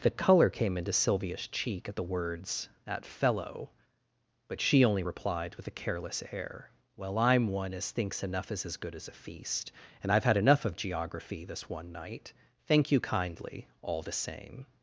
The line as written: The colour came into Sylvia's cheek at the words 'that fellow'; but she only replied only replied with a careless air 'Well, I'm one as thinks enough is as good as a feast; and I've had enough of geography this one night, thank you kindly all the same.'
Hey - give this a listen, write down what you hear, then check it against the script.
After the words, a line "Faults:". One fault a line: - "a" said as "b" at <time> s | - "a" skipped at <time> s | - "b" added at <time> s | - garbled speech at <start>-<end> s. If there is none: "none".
The colour came into Sylvia's cheek at the words 'that fellow'; but she only replied with a careless air 'Well, I'm one as thinks enough is as good as a feast; and I've had enough of geography this one night, thank you kindly all the same.'
Faults:
- "only replied" skipped at 5.6 s